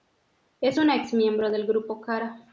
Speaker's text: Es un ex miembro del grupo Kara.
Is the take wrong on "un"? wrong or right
wrong